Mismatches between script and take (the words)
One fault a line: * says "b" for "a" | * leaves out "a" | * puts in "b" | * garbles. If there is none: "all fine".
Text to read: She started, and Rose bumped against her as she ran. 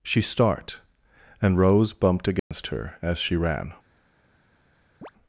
* says "start" for "started"